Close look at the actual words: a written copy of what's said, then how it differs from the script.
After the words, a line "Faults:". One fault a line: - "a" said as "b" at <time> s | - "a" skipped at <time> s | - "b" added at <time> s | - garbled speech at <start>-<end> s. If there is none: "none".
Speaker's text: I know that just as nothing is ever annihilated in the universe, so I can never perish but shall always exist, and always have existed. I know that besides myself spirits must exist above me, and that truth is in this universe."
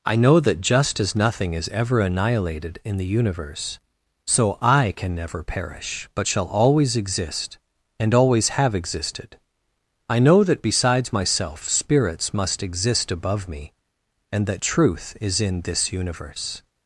I know that just as nothing is ever annihilated in the universe, so I can never perish but shall always exist, and always have existed. I know that besides myself spirits must exist above me, and that truth is in this universe."
Faults:
none